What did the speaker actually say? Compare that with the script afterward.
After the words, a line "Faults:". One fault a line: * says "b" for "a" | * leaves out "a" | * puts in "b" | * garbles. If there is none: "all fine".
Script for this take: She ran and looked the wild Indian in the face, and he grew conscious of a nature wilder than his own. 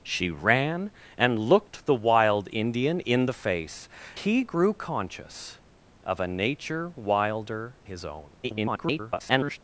She ran and looked the wild Indian in the face, he grew conscious of a nature wilder his own. [garbled]
Faults:
* leaves out "and"
* leaves out "than"
* garbles